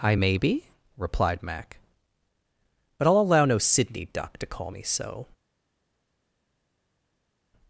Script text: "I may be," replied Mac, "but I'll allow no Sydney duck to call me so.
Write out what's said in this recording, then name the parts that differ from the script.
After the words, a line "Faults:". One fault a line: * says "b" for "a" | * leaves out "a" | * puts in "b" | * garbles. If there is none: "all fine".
"I may be," replied Mac, "but I'll allow no Sydney duck to call me so.
Faults:
all fine